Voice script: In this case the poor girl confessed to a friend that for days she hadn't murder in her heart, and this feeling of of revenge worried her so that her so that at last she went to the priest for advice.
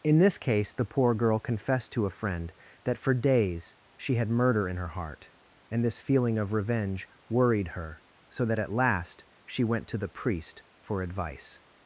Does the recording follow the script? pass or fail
fail